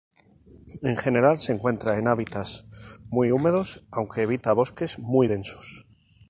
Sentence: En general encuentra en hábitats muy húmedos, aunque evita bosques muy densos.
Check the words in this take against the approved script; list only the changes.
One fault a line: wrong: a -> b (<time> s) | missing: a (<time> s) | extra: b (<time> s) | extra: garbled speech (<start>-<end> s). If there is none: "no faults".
extra: se (1.4 s)